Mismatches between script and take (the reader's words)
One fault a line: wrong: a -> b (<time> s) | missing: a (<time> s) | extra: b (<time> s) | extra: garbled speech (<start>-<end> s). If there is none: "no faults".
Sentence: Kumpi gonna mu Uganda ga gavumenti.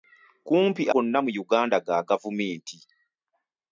no faults